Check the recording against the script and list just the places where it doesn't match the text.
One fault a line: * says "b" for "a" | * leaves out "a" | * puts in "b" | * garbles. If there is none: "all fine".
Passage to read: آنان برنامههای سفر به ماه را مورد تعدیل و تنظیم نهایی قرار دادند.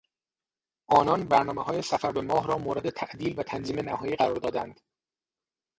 all fine